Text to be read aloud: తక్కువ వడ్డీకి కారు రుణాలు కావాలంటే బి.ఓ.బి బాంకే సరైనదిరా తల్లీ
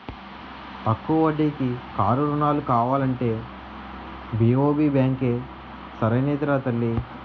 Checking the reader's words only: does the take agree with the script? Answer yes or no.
yes